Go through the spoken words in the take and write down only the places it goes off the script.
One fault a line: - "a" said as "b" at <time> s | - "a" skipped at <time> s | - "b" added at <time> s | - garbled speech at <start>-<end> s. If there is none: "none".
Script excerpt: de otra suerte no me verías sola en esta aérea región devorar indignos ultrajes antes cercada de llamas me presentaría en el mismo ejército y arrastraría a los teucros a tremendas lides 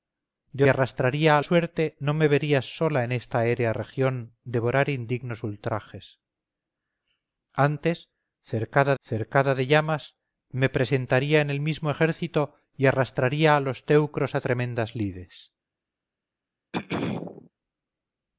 - "otra" said as "arrastraría" at 0.7 s
- "cercada" added at 9.0 s